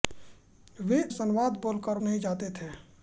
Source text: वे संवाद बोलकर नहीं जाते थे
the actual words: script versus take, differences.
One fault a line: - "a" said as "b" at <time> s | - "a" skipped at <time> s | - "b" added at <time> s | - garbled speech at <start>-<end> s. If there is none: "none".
none